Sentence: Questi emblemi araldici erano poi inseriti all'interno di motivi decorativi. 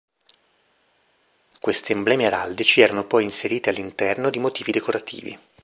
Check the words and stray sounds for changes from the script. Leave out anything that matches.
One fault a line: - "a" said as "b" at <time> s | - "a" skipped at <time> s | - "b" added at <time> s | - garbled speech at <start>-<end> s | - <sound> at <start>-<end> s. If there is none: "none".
none